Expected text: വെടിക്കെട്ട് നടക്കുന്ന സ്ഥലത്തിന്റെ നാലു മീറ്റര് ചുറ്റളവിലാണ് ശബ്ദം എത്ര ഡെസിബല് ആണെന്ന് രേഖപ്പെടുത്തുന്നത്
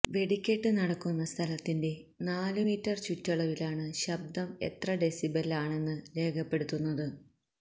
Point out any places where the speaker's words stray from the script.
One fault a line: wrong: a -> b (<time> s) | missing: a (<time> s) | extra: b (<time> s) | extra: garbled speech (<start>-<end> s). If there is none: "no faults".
no faults